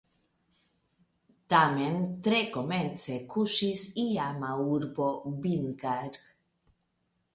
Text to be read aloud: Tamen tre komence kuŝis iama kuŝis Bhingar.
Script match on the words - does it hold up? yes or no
no